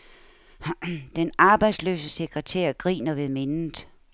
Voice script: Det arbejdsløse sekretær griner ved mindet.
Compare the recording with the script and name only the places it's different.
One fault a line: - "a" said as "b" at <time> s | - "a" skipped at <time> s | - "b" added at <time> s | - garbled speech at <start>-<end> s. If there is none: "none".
- "Det" said as "Den" at 1.1 s